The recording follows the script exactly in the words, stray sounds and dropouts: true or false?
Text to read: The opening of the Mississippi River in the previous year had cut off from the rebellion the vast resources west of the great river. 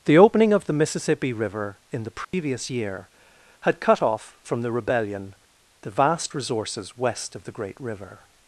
false